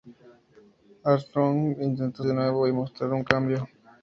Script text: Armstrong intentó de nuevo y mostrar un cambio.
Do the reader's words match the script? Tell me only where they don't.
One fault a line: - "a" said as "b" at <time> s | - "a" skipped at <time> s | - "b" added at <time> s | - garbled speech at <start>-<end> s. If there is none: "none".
none